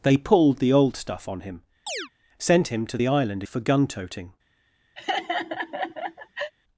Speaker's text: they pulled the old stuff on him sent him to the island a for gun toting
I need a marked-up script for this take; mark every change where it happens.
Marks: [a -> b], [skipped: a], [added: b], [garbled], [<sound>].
they pulled the old stuff on him [chirp] sent him to the island a for gun toting [laugh]